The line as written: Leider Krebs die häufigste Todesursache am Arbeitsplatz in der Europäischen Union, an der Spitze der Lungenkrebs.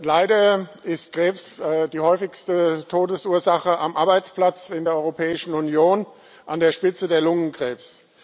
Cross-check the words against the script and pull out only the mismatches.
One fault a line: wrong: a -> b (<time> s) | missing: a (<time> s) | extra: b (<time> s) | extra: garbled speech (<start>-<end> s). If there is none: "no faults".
extra: ist (0.8 s)